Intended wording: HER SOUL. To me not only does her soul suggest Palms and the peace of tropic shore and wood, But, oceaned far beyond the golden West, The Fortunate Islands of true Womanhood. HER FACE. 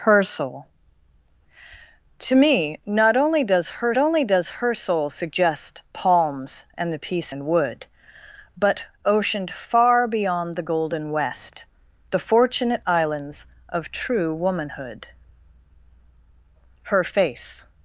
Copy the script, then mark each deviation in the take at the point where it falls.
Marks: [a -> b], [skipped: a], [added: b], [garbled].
HER SOUL. To me not only does her [added: only does her] soul suggest Palms and the peace [skipped: of tropic shore] and wood, But, oceaned far beyond the golden West, The Fortunate Islands of true Womanhood. HER FACE.